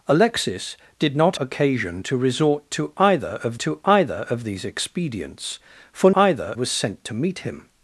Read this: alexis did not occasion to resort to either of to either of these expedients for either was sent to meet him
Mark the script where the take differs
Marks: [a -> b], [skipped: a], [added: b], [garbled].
alexis did not occasion to resort to either of to either of these expedients for either was sent to meet him